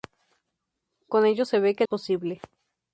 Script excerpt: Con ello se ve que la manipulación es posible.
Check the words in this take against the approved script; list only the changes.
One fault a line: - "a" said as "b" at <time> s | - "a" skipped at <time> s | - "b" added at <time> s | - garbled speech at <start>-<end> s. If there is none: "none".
- "la manipulación es" skipped at 1.8 s